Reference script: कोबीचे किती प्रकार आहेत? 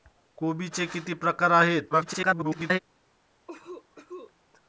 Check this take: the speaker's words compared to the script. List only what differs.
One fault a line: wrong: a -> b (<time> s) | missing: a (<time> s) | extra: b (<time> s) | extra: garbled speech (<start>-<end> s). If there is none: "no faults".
extra: garbled speech (1.9-2.8 s)